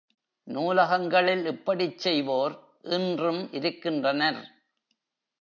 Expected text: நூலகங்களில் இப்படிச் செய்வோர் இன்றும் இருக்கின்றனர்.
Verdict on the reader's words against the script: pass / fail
pass